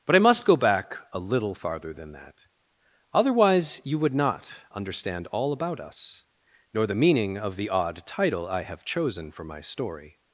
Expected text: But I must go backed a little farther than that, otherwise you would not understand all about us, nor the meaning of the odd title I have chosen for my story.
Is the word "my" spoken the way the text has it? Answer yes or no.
yes